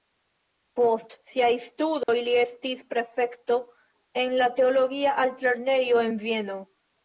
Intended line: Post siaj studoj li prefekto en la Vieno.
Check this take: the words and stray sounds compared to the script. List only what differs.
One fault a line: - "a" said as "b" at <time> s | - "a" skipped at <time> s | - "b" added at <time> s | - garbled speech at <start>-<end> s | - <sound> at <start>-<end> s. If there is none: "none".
- dropout at 2.0-2.1 s
- "estis" added at 2.4 s
- "teologia altlernejo en" added at 4.6 s